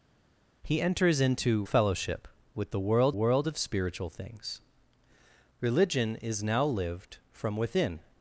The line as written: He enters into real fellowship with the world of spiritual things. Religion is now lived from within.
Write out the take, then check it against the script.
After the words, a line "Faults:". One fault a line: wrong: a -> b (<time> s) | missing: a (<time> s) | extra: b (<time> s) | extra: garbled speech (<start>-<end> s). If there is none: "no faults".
He enters into fellowship with the world world of spiritual things. Religion is now lived from within.
Faults:
missing: real (1.6 s)
extra: world (3.1 s)